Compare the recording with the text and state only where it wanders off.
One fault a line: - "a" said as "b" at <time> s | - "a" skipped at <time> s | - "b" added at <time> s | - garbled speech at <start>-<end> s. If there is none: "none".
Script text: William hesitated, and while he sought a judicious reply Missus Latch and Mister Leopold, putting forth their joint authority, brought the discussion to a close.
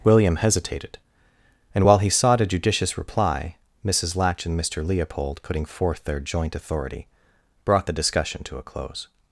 none